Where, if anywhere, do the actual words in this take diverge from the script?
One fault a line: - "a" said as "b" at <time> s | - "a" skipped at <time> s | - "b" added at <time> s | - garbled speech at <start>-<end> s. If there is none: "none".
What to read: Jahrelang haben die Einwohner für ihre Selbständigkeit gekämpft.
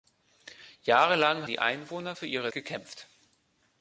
- "haben" skipped at 1.5 s
- "Selbständigkeit" skipped at 2.5 s